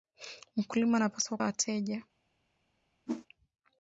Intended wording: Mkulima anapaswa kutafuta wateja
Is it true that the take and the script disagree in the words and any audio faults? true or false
true